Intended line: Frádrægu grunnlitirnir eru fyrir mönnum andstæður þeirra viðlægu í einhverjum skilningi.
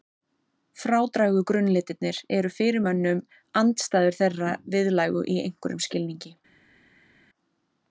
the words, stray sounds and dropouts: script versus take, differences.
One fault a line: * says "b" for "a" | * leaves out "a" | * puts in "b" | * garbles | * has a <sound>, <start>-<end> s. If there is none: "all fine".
all fine